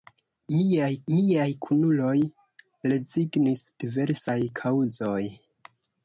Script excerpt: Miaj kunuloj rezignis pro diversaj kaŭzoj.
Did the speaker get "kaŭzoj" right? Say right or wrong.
right